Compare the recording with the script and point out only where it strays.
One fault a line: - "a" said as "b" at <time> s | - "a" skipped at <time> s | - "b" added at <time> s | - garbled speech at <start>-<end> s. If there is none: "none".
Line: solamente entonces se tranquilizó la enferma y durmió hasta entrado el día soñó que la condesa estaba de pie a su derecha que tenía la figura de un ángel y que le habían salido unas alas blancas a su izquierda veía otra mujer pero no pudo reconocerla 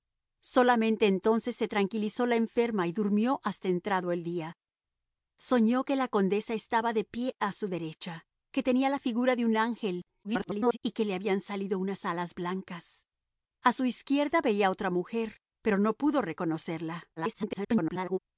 - garbled speech at 10.2-10.8 s
- garbled speech at 17.2-18.2 s